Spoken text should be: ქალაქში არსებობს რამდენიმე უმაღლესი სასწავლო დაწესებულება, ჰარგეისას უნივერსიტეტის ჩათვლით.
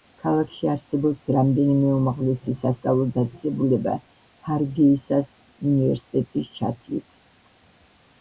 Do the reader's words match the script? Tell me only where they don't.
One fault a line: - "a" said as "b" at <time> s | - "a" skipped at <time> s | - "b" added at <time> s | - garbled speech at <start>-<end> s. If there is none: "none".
none